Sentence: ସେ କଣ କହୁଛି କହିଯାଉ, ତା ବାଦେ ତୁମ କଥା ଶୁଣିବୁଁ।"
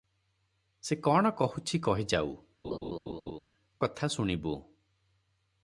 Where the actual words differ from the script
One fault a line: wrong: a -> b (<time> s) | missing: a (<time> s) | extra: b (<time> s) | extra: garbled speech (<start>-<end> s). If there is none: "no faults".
missing: ତା ବାଦେ ତୁମ (2.3 s)